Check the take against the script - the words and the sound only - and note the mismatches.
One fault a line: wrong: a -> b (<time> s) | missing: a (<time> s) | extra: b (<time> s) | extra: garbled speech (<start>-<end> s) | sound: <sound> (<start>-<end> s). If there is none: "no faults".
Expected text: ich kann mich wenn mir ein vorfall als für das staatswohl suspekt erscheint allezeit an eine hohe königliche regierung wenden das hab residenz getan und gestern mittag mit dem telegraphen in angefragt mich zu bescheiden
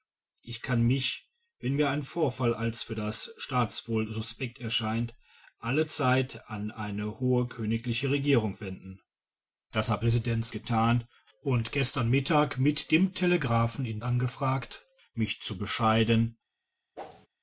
sound: whoosh (16.9-17.3 s)